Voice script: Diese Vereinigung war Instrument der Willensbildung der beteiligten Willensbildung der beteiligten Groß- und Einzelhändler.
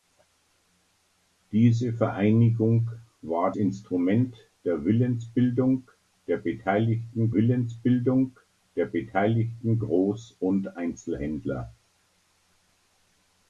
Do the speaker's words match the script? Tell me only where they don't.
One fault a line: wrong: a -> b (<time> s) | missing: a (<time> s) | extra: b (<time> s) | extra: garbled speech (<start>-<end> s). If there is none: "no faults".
no faults